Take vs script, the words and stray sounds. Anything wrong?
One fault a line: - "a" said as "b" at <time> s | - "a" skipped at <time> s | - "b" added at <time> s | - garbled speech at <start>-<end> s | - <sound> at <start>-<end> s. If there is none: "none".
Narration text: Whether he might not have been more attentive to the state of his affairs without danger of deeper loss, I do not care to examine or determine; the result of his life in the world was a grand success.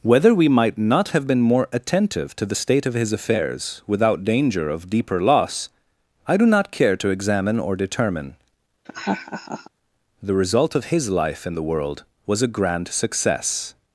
- "he" said as "we" at 0.3 s
- laugh at 8.8-9.7 s